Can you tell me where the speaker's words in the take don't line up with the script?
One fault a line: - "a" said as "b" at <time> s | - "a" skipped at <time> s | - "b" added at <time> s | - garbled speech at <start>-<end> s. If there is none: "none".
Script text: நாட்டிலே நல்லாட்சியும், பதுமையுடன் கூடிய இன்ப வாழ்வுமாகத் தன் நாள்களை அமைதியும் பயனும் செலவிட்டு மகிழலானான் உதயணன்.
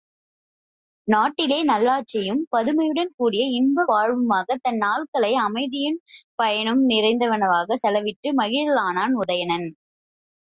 - "நிறைந்தனவாகச்" added at 6.9 s